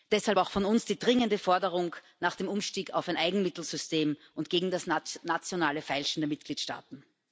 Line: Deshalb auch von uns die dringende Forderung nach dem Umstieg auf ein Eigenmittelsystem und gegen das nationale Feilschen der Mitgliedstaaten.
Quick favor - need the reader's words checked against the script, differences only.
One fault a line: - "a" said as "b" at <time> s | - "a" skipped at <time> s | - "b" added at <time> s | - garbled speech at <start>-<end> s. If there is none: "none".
none